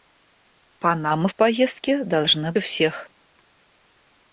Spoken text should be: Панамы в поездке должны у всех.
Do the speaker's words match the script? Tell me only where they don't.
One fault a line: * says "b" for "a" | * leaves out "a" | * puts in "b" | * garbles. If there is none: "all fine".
all fine